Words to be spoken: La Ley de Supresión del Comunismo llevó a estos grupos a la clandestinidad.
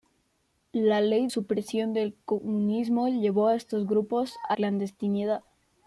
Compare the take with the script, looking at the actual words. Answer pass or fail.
fail